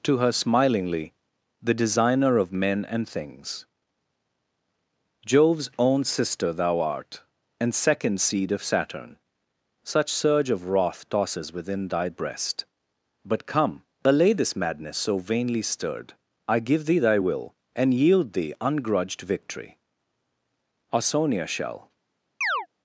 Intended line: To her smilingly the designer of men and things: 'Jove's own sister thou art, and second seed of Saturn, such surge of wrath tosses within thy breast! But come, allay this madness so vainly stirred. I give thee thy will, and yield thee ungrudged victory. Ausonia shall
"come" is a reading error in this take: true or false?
false